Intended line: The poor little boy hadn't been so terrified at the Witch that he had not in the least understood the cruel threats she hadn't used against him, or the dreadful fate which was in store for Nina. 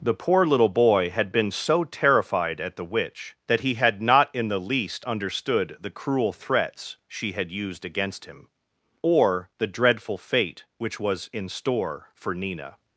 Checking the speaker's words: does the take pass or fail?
fail